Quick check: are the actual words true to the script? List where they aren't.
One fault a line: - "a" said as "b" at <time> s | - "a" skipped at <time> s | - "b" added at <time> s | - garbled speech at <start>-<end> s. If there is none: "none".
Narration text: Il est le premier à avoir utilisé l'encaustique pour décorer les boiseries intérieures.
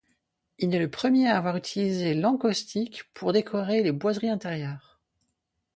none